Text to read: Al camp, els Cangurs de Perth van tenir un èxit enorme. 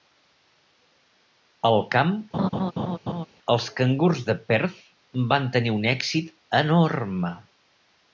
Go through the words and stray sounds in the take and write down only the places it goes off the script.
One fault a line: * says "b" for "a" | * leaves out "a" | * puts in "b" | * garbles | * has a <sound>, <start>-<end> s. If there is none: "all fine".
* has a laugh, 2.3-3.3 s